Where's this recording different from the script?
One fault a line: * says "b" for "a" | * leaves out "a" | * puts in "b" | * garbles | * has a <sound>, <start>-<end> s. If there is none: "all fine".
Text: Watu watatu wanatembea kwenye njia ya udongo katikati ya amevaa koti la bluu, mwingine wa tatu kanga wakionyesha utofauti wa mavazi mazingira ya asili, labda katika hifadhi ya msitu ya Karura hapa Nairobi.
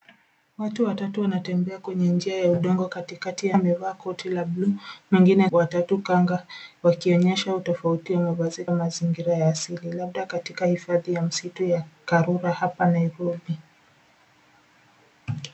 all fine